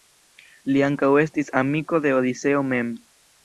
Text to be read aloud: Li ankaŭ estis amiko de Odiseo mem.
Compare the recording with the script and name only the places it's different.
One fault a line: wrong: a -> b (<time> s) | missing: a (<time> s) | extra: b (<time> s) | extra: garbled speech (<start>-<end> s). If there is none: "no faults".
no faults